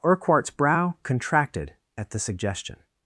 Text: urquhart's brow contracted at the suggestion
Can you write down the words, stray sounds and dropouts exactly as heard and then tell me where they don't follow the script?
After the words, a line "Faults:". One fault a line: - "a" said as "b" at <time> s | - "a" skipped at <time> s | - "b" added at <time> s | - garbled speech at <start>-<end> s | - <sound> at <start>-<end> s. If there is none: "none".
urquhart's brow contracted at the suggestion
Faults:
none